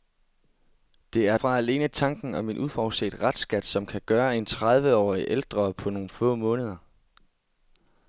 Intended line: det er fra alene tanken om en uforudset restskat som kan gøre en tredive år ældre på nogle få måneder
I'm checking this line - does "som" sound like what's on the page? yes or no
yes